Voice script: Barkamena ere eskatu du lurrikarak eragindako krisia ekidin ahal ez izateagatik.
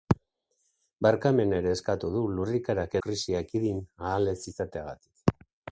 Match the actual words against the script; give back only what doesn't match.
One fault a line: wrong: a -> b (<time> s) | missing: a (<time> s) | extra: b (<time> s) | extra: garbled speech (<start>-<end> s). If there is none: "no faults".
missing: eragindako (3.0 s)